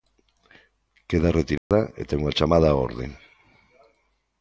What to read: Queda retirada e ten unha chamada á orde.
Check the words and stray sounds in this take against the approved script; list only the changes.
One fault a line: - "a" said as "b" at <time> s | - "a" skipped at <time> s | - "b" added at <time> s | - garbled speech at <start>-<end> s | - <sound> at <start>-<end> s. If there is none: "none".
- dropout at 1.6-1.7 s